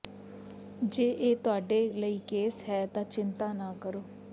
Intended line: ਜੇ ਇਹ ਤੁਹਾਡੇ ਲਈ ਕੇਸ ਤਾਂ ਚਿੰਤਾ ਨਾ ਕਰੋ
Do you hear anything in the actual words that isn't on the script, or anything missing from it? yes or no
yes